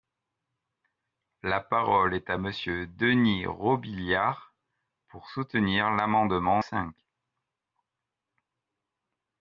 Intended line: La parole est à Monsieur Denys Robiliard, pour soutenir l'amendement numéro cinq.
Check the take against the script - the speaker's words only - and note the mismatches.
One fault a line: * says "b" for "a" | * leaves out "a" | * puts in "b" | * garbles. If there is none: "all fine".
* leaves out "numéro"